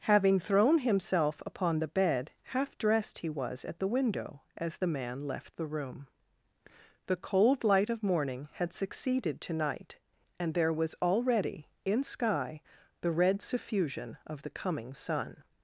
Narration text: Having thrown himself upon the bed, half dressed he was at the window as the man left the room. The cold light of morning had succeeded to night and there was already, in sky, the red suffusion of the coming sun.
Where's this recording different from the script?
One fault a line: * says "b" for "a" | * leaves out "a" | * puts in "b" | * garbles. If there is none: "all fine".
all fine